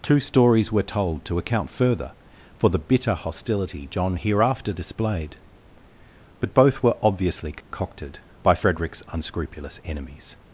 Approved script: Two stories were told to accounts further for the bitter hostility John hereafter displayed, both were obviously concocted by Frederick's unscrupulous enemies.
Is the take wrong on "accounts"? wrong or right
wrong